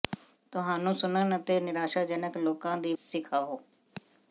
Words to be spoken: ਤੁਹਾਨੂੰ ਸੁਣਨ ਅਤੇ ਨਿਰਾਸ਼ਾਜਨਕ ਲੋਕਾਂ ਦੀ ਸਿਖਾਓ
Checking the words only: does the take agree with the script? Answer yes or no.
yes